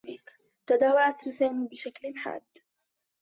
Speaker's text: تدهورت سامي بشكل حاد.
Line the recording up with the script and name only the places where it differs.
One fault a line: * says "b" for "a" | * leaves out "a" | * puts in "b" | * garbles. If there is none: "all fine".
all fine